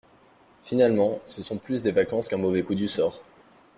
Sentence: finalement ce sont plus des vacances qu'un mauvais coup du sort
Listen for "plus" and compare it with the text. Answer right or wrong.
right